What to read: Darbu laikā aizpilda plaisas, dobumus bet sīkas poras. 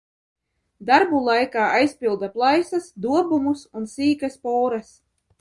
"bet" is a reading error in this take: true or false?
true